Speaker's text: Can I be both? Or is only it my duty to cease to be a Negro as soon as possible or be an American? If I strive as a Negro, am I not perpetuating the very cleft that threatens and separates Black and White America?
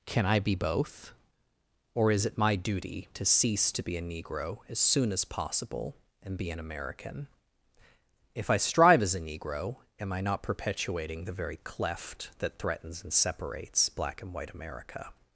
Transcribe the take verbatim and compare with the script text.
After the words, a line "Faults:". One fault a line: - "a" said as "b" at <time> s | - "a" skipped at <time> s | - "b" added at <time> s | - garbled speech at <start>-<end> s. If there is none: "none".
Can I be both? Or is it my duty to cease to be a Negro as soon as possible and be an American? If I strive as a Negro, am I not perpetuating the very cleft that threatens and separates Black and White America?
Faults:
- "only" skipped at 2.2 s
- "or" said as "and" at 6.2 s